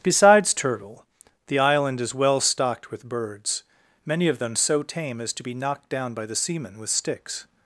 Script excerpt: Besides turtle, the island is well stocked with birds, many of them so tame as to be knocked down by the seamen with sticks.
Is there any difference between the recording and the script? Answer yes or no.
no